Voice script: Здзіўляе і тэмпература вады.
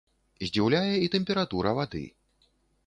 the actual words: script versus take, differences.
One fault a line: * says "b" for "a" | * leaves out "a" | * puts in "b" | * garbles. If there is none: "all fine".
all fine